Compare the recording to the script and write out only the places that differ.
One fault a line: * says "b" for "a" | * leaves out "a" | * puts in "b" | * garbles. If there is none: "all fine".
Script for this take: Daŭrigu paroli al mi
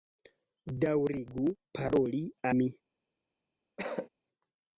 * leaves out "al"